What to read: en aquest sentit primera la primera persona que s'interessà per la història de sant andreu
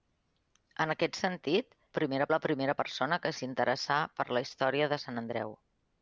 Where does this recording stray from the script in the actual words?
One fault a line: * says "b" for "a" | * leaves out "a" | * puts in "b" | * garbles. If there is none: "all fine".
all fine